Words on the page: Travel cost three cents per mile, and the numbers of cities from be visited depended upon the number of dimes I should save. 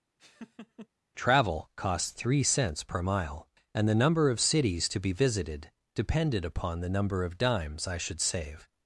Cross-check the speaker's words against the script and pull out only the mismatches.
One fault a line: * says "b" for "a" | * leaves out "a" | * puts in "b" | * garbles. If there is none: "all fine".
* says "number" for "numbers"
* says "to" for "from"